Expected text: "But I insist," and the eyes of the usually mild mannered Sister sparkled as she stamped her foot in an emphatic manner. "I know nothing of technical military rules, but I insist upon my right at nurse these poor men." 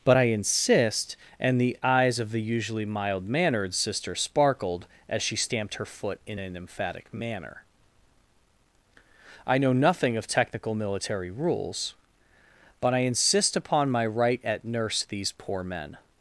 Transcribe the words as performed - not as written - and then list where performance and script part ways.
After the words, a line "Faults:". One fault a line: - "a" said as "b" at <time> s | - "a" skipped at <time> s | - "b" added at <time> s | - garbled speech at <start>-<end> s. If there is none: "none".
"But I insist," and the eyes of the usually mild mannered Sister sparkled as she stamped her foot in an emphatic manner. "I know nothing of technical military rules, but I insist upon my right at nurse these poor men."
Faults:
none